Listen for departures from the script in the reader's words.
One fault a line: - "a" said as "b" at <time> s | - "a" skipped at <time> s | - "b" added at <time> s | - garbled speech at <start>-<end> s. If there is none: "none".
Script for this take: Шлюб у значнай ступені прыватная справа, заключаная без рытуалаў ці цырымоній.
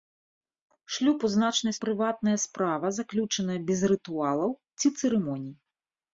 - "ступені" skipped at 1.8 s